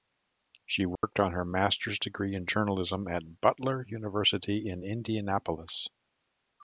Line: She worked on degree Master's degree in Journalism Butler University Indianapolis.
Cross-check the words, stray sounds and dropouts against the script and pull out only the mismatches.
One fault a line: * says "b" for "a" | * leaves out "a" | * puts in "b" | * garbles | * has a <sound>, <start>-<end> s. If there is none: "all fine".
* has a dropout, 1.0-1.0 s
* says "her" for "degree"
* puts in "at"
* puts in "in"